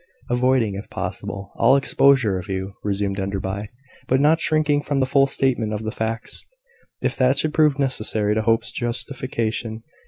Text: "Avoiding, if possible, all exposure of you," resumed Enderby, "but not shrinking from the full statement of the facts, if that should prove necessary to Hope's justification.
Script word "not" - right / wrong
right